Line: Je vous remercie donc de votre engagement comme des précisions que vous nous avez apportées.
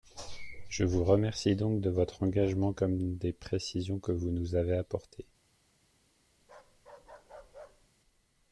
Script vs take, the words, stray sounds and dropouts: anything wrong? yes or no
yes